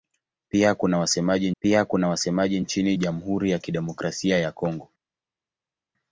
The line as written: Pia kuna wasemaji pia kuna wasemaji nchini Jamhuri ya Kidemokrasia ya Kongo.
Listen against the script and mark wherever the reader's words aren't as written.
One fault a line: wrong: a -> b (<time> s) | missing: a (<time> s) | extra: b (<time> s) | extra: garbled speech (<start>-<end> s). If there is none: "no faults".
no faults